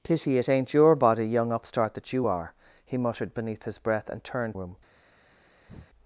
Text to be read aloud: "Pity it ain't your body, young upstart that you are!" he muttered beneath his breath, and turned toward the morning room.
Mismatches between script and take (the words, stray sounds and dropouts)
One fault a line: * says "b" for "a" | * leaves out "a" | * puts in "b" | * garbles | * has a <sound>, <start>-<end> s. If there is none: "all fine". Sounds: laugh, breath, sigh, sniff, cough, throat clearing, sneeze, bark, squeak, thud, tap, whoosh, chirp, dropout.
* leaves out "toward the morning"
* has a breath, 5.7-5.9 s